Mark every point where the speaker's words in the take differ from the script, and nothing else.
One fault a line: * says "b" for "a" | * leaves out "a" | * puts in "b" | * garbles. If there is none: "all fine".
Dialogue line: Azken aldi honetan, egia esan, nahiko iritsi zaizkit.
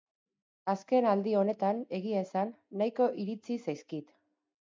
all fine